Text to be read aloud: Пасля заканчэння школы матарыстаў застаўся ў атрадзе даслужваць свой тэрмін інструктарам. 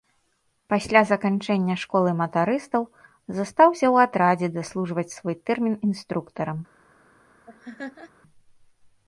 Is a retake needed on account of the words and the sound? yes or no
yes